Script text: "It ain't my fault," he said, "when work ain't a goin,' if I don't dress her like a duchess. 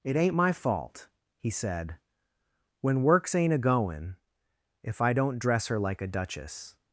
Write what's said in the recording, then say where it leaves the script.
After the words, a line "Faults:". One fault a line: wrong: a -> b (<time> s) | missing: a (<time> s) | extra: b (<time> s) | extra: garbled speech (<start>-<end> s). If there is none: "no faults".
"It ain't my fault," he said, "when works ain't a goin,' if I don't dress her like a duchess.
Faults:
wrong: work -> works (3.0 s)